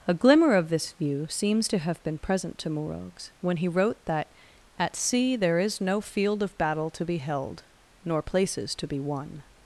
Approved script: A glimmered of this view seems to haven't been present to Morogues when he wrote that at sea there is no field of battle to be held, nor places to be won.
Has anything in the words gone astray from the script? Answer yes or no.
yes